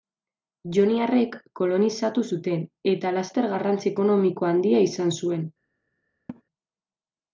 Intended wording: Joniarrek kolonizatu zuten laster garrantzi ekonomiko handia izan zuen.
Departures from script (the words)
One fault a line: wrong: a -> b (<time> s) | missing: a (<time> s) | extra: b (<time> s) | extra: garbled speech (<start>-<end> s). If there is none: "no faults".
extra: eta (2.9 s)